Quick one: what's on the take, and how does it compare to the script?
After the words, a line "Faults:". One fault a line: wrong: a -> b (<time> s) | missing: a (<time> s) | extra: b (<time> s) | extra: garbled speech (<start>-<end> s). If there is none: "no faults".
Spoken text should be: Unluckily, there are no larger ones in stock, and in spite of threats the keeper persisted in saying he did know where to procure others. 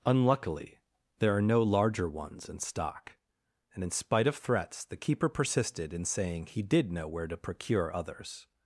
Unluckily, there are no larger ones in stock, and in spite of threats the keeper persisted in saying he did know where to procure others.
Faults:
no faults